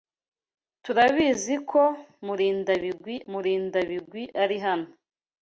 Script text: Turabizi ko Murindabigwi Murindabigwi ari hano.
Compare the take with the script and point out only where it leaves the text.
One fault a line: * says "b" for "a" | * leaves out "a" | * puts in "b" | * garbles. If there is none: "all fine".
all fine